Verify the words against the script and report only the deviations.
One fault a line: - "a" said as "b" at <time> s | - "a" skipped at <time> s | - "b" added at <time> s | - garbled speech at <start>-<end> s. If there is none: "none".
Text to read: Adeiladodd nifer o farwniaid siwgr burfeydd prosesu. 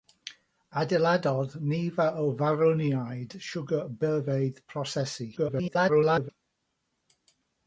- garbled speech at 5.4-6.3 s